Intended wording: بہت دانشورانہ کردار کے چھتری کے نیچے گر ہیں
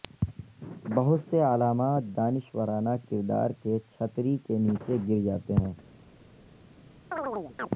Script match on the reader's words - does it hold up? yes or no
no